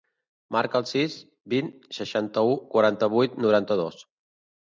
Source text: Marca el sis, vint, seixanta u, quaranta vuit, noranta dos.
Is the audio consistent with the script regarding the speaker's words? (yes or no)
yes